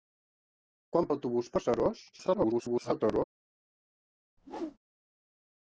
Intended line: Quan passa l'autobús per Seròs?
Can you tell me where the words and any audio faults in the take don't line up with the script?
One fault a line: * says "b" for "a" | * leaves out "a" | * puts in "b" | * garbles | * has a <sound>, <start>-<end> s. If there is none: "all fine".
* leaves out "passa"
* garbles
* has a whoosh, 4.4-4.8 s